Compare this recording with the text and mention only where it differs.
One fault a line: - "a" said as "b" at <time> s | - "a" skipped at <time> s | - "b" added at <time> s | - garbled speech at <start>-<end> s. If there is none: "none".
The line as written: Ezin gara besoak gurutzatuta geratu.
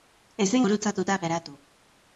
- "gara besoak" skipped at 0.7 s